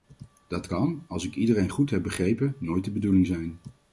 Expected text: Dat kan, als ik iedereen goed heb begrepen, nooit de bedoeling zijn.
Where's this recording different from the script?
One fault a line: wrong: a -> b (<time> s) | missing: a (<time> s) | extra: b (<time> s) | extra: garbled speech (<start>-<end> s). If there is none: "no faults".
no faults